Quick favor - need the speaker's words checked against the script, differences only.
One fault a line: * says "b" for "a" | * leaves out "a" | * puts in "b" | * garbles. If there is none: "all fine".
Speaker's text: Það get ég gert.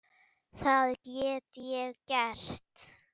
all fine